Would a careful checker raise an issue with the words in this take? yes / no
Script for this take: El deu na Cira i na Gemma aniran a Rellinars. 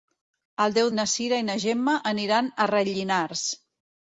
no